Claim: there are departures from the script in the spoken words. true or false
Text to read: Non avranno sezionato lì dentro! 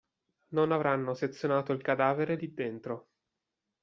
true